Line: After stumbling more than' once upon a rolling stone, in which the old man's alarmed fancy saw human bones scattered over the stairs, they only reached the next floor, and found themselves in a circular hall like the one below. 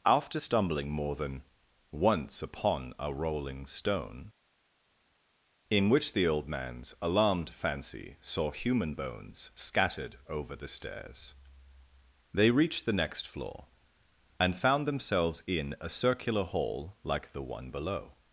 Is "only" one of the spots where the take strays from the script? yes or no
yes